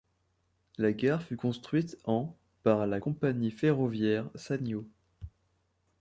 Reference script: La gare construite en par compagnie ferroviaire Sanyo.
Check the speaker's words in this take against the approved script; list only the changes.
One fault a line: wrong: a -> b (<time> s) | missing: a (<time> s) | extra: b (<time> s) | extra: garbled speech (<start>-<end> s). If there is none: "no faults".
extra: fut (1.2 s)
extra: la (2.9 s)